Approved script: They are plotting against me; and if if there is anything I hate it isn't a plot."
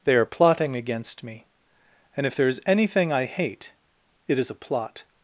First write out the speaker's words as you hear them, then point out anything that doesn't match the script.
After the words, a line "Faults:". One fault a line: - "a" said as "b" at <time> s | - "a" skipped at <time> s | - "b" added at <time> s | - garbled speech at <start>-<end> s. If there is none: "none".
They are plotting against me; and if there is anything I hate it is a plot."
Faults:
- "if" skipped at 2.4 s
- "isn't" said as "is" at 4.4 s